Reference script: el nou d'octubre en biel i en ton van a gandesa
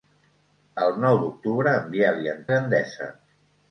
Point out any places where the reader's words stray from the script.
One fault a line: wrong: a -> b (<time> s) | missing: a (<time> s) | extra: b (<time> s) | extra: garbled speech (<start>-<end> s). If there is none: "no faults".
missing: ton van (2.4 s)